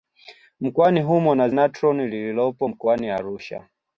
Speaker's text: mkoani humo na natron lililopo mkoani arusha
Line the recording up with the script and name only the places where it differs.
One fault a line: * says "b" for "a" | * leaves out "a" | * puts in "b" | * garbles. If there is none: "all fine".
all fine